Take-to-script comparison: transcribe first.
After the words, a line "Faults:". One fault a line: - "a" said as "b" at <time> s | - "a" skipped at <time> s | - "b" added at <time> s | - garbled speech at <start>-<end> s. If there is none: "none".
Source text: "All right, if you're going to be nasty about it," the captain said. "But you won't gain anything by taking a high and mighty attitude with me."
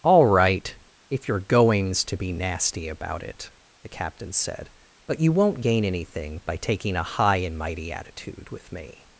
"All right, if you're goings to be nasty about it," the captain said. "But you won't gain anything by taking a high and mighty attitude with me."
Faults:
- "going" said as "goings" at 1.4 s